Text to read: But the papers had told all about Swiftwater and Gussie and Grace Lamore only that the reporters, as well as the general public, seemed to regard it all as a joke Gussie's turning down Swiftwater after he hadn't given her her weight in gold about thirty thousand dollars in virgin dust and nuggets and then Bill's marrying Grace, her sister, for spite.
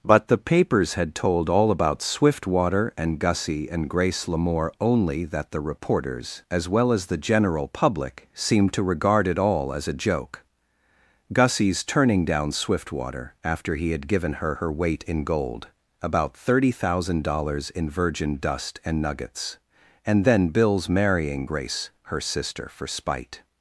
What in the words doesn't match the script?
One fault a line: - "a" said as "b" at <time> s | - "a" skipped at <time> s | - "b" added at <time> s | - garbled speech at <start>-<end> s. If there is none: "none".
- "hadn't" said as "had" at 13.9 s